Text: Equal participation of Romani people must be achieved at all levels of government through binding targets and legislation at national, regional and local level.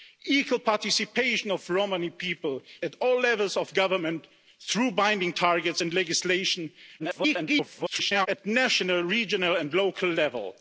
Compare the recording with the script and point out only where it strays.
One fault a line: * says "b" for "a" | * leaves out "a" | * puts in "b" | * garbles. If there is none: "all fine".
* leaves out "must be achieved"
* garbles